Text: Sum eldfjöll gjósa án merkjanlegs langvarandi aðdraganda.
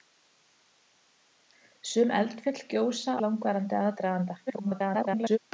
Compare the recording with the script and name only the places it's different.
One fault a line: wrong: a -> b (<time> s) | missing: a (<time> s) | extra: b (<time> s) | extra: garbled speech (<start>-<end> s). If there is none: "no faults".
missing: án merkjanlegs (3.1 s)
extra: garbled speech (4.5-5.4 s)